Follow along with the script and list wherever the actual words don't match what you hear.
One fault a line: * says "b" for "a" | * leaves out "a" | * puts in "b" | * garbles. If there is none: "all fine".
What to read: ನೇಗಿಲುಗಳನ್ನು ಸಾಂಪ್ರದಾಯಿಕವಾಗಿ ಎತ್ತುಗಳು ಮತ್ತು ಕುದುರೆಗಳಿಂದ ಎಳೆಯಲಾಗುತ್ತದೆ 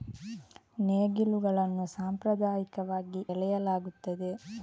* leaves out "ಎತ್ತುಗಳು ಮತ್ತು ಕುದುರೆಗಳಿಂದ"